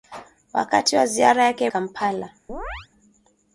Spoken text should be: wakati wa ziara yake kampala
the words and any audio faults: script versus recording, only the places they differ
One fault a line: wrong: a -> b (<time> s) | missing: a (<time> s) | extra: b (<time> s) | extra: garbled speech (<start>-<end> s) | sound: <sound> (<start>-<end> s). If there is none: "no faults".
sound: chirp (2.5-2.9 s)